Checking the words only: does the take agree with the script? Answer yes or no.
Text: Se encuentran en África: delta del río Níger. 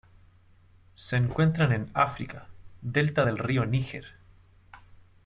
yes